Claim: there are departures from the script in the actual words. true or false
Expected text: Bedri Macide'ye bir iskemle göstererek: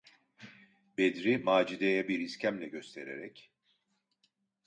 false